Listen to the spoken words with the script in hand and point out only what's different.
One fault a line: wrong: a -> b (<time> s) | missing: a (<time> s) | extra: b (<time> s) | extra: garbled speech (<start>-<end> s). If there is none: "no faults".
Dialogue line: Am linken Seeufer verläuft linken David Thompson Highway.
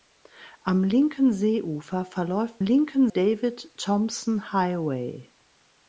no faults